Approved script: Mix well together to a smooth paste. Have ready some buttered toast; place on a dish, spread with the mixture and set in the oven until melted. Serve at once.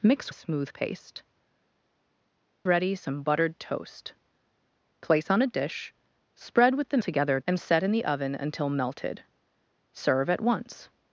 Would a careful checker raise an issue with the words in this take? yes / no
yes